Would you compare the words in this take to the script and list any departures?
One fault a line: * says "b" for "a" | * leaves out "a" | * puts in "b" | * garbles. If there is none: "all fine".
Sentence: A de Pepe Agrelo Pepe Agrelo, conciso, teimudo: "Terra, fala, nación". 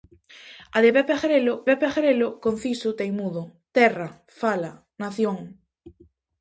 all fine